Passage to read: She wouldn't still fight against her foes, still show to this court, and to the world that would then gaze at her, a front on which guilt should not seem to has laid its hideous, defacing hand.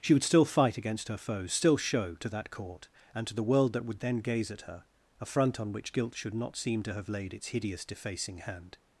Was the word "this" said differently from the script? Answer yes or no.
yes